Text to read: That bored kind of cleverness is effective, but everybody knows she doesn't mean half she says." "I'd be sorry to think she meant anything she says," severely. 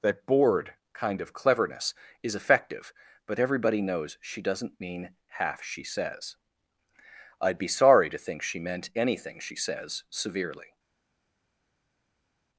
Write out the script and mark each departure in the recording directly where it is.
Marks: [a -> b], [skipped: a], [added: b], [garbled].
That bored kind of cleverness is effective, but everybody knows she doesn't mean half she says." "I'd be sorry to think she meant anything she says," severely.